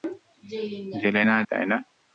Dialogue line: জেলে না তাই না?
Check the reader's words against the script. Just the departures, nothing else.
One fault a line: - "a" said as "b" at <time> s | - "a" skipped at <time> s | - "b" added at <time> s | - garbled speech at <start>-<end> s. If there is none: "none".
none